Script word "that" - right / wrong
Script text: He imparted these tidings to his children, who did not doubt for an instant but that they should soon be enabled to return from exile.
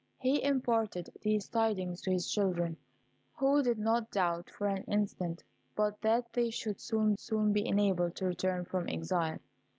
right